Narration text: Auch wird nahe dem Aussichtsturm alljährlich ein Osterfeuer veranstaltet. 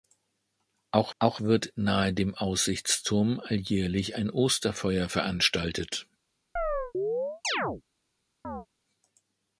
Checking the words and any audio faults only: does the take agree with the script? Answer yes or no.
no